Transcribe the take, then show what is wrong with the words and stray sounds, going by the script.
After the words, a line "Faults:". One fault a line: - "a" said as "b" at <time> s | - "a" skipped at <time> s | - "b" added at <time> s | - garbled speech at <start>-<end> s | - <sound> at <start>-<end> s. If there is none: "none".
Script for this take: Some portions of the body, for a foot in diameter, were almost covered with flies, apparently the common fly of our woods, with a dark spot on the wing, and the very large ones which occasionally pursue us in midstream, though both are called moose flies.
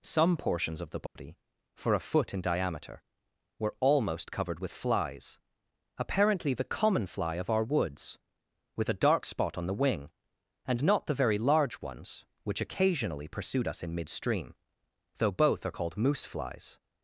Some portions of the body, for a foot in diameter, were almost covered with flies, apparently the common fly of our woods, with a dark spot on the wing, and not the very large ones which occasionally pursued us in midstream, though both are called moose flies.
Faults:
- dropout at 1.1-1.2 s
- "not" added at 10.8 s
- "pursue" said as "pursued" at 13.3 s